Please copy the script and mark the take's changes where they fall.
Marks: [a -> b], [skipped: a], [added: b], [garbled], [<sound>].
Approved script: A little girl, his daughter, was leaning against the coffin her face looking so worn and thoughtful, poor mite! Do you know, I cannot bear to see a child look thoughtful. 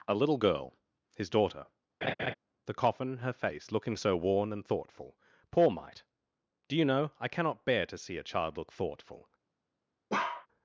A little girl, his daughter, [skipped: was leaning against] [laugh] the coffin her face looking so worn and thoughtful, poor mite! Do you know, I cannot bear to see a child look thoughtful. [bark]